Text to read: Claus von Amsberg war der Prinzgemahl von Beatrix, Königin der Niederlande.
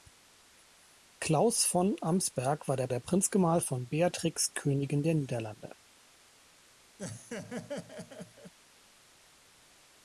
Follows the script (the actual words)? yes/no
no